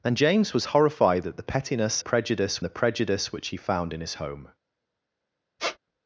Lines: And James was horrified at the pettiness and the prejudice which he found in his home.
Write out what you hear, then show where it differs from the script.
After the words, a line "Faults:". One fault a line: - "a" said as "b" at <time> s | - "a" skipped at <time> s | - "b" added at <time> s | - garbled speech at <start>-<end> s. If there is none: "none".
And James was horrified at the pettiness prejudice the prejudice which he found in his home.
Faults:
- "and" said as "prejudice" at 2.0 s